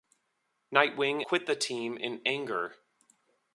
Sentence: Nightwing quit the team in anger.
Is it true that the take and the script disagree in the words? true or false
false